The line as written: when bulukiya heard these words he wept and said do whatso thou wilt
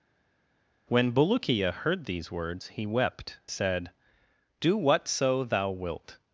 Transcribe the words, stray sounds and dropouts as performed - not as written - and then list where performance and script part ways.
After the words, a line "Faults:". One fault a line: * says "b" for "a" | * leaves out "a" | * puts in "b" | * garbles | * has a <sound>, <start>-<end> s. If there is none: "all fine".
when bulukiya heard these words he wept said do whatso thou wilt
Faults:
* leaves out "and"